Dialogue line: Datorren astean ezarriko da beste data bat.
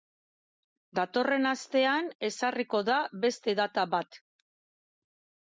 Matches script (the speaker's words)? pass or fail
pass